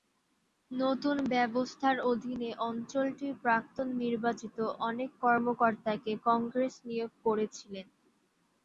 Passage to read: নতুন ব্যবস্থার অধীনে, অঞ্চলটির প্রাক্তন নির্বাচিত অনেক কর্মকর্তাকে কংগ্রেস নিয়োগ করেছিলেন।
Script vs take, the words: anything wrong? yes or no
no